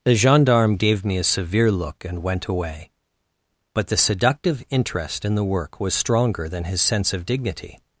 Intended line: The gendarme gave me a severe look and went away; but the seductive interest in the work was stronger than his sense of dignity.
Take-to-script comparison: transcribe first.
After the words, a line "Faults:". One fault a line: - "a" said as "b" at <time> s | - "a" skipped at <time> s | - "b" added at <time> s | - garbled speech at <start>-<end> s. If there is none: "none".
The gendarme gave me a severe look and went away; but the seductive interest in the work was stronger than his sense of dignity.
Faults:
none